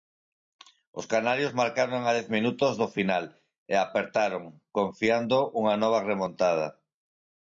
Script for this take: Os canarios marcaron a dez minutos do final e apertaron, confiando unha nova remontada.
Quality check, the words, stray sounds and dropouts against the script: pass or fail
pass